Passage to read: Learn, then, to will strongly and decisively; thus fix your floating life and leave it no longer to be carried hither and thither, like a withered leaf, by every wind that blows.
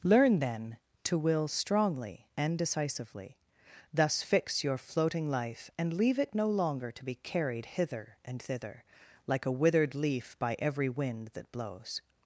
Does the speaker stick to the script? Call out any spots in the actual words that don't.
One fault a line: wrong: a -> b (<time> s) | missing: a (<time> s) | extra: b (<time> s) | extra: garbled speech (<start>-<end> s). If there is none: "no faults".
no faults